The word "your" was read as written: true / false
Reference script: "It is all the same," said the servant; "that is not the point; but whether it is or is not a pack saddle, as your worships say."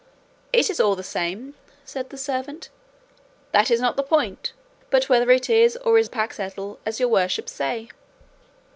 true